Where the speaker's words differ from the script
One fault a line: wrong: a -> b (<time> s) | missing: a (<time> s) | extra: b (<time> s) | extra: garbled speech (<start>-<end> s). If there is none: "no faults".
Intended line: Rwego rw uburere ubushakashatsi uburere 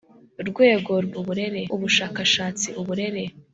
no faults